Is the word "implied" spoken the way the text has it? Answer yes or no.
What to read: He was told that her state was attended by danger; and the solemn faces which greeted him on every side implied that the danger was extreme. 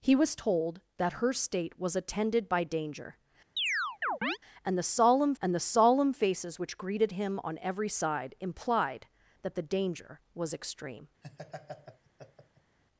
yes